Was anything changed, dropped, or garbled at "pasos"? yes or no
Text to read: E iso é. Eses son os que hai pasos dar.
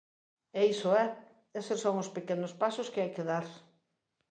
yes